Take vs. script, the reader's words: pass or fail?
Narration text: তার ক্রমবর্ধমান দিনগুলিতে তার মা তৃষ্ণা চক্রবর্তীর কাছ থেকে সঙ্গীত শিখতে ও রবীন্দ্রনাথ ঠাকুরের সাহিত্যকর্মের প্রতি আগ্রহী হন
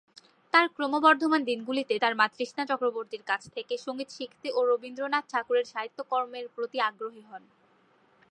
pass